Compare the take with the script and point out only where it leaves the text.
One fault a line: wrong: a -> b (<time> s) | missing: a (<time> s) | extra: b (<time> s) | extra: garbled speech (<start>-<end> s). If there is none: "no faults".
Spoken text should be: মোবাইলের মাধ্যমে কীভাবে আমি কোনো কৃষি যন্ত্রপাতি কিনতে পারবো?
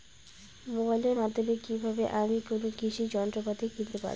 no faults